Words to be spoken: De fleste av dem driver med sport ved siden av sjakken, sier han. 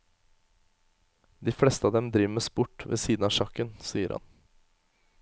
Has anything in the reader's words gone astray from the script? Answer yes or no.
no